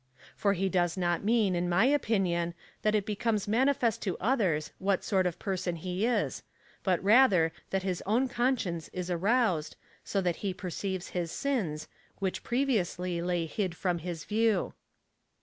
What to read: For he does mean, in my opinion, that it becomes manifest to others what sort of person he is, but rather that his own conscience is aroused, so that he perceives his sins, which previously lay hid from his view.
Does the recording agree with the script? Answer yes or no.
no